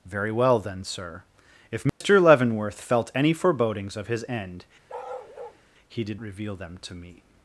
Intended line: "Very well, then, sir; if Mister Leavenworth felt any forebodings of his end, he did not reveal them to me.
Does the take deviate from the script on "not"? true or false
true